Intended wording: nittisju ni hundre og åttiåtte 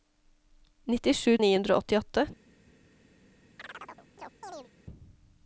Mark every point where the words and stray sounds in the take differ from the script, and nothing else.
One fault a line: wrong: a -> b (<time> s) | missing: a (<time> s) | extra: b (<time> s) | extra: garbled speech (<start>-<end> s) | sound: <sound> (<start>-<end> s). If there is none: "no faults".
sound: chirp (3.6-4.7 s)